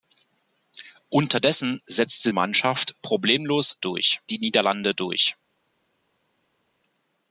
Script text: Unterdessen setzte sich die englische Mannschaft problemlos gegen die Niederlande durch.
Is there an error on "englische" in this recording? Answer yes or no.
yes